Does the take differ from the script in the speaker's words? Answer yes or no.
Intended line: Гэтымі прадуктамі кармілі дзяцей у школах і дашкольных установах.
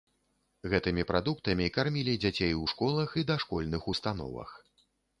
no